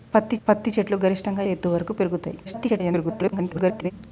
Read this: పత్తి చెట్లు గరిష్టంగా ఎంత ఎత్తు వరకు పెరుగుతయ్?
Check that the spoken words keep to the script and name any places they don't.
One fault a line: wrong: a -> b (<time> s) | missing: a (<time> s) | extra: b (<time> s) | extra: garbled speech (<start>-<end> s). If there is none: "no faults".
extra: పత్తి (0.5 s)
missing: ఎంత (1.4 s)
extra: garbled speech (2.4-3.9 s)